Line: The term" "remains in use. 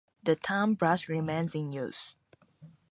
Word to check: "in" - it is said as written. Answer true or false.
true